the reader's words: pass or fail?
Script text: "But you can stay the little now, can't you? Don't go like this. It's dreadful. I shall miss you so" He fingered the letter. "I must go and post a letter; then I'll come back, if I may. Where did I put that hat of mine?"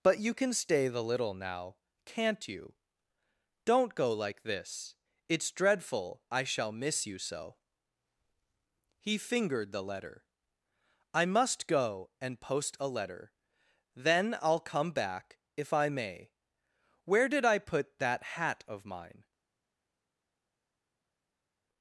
pass